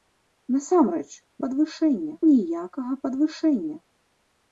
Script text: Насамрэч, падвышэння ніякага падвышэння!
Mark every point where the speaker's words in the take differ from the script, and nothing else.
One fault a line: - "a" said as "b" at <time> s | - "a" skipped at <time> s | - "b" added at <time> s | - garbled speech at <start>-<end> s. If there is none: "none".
none